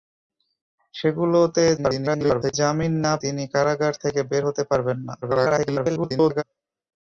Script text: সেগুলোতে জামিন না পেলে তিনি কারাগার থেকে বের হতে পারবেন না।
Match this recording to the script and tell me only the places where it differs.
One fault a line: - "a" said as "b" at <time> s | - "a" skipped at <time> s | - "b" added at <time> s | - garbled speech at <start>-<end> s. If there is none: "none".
- garbled speech at 1.8-2.5 s
- "পেলে" skipped at 3.1 s
- garbled speech at 5.2-6.4 s